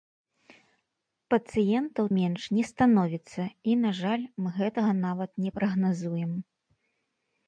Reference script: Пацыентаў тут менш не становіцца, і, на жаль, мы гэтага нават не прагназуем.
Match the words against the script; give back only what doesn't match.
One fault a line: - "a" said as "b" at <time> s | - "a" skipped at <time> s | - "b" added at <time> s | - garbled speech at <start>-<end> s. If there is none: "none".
- "тут" skipped at 2.0 s